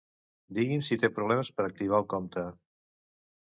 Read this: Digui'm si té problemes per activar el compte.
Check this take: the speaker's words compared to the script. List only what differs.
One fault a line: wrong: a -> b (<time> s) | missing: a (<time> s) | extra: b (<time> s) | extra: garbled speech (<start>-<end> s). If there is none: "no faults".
no faults